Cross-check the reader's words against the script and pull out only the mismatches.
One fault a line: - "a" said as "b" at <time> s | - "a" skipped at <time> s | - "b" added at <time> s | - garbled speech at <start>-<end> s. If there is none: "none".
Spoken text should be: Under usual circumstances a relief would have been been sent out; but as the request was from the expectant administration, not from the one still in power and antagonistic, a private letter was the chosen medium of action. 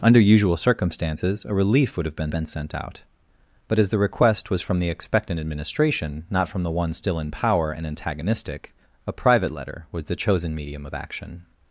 none